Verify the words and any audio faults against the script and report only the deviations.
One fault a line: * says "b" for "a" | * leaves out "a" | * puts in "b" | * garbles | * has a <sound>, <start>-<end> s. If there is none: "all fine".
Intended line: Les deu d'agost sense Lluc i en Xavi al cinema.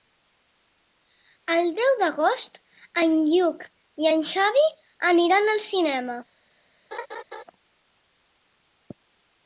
* says "El" for "Les"
* says "en" for "sense"
* puts in "aniran"
* has a laugh, 6.9-7.4 s